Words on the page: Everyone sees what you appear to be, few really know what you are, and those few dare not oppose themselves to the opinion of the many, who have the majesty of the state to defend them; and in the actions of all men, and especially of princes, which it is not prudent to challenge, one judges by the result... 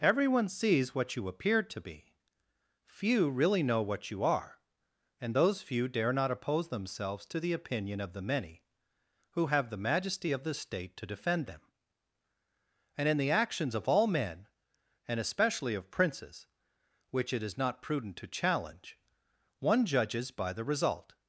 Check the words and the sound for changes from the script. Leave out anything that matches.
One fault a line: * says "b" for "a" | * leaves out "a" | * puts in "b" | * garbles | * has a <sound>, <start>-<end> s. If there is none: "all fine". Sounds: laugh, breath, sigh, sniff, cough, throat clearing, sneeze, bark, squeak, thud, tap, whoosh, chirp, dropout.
all fine